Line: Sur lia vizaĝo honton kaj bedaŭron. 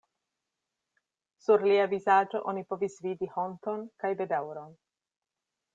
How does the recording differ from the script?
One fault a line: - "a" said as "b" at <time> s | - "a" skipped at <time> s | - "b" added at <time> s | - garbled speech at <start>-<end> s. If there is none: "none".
- "oni povis vidi" added at 2.5 s